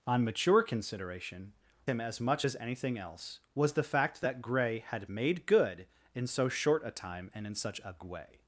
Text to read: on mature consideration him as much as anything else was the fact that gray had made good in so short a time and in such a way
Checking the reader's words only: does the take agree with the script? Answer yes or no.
yes